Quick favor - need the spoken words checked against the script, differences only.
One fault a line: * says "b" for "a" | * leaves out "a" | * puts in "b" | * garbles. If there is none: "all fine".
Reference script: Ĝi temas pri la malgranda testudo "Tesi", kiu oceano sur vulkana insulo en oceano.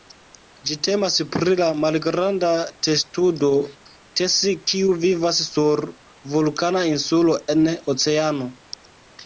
* says "vivas" for "oceano"